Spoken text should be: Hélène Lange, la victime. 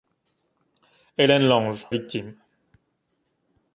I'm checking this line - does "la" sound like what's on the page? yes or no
no